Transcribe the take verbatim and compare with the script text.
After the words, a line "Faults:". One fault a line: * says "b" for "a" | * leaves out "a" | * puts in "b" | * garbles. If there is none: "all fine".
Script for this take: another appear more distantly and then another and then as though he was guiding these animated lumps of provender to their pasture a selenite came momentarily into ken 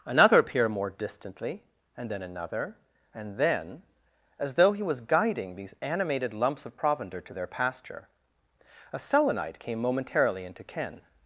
another appear more distantly and then another and then as though he was guiding these animated lumps of provender to their pasture a selenite came momentarily into ken
Faults:
all fine